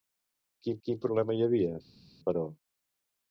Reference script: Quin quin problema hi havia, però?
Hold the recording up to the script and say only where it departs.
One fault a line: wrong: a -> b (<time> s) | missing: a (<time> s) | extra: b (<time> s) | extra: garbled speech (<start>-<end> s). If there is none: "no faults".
no faults